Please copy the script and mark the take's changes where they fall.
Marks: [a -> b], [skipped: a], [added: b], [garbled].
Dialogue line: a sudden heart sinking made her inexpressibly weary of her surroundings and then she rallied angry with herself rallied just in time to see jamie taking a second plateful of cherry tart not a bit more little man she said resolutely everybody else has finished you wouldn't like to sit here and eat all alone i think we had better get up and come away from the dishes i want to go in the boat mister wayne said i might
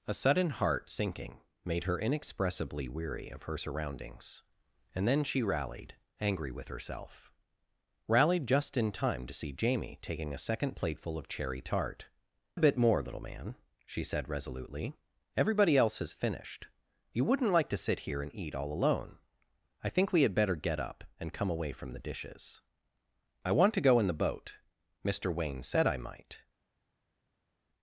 a sudden heart sinking made her inexpressibly weary of her surroundings and then she rallied angry with herself rallied just in time to see jamie taking a second plateful of cherry tart [skipped: not] a bit more little man she said resolutely everybody else has finished you wouldn't like to sit here and eat all alone i think we had better get up and come away from the dishes i want to go in the boat mister wayne said i might